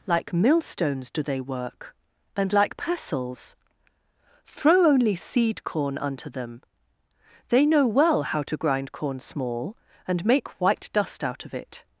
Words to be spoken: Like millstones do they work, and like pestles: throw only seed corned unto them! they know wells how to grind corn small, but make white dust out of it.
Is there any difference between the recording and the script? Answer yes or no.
yes